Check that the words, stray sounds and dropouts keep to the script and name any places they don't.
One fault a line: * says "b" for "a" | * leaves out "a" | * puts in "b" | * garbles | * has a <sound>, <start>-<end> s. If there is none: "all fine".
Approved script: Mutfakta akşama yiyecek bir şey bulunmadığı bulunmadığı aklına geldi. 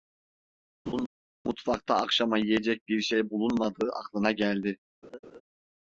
* has a laugh, 0.9-1.1 s
* leaves out "bulunmadığı"
* has a laugh, 5.0-5.4 s